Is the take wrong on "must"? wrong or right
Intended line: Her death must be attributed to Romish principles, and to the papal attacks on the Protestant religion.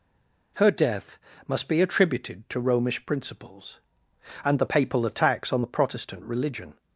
right